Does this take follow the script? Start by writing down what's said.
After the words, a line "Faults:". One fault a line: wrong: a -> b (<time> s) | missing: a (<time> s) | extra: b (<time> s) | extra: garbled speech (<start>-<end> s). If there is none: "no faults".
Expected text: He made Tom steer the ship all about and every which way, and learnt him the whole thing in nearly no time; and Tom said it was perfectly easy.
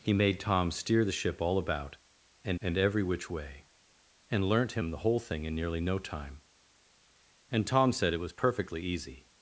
He made Tom steer the ship all about and and every which way, and learnt him the whole thing in nearly no time; and Tom said it was perfectly easy.
Faults:
extra: and (2.6 s)